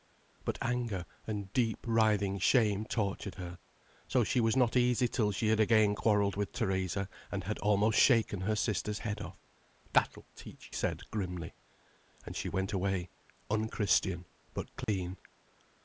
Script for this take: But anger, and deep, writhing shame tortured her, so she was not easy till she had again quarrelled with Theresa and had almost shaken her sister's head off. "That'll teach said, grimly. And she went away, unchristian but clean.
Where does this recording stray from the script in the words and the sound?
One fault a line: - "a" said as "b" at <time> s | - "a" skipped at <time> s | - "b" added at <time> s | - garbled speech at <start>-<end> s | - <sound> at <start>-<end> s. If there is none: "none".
- dropout at 14.8-14.9 s